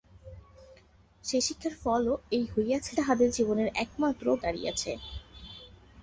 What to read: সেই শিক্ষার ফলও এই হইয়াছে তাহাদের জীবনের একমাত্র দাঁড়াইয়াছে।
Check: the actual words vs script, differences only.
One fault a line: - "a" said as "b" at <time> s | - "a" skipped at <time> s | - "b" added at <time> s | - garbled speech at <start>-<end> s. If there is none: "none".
none